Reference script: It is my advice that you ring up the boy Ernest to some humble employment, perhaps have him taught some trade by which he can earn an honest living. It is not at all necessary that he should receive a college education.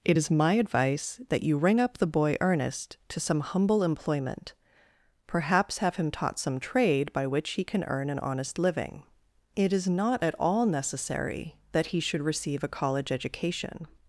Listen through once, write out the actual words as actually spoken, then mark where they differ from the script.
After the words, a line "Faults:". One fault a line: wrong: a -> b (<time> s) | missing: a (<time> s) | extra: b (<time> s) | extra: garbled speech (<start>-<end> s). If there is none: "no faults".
It is my advice that you ring up the boy Ernest to some humble employment, perhaps have him taught some trade by which he can earn an honest living. It is not at all necessary that he should receive a college education.
Faults:
no faults